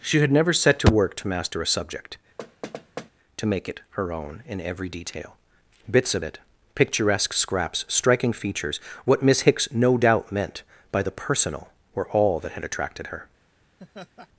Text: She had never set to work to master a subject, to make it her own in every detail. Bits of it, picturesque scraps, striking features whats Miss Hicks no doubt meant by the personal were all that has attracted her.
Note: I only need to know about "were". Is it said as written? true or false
true